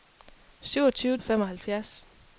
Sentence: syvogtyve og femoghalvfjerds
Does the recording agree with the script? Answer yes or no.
yes